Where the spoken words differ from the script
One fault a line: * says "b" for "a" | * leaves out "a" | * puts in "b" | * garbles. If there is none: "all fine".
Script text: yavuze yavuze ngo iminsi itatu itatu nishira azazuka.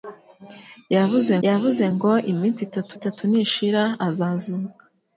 all fine